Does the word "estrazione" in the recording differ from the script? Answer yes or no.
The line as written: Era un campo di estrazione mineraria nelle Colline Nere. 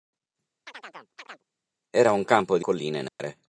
yes